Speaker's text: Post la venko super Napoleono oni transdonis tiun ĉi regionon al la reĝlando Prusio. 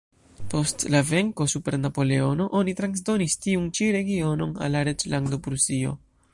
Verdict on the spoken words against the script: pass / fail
pass